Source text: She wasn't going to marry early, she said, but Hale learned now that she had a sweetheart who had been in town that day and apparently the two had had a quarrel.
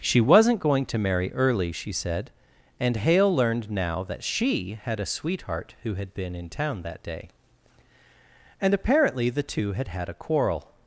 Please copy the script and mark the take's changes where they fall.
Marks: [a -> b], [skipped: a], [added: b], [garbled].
She wasn't going to marry early, she said, [but -> and] Hale learned now that she had a sweetheart who had been in town that day and apparently the two had had a quarrel.